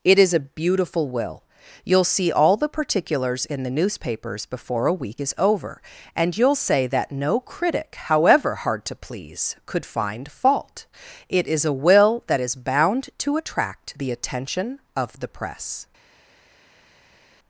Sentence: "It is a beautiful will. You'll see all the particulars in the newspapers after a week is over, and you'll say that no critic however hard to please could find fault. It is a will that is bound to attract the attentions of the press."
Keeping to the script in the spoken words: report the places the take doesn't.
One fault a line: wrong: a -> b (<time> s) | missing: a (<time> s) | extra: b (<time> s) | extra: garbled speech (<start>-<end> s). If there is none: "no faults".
wrong: after -> before (4.5 s)
wrong: attentions -> attention (14.1 s)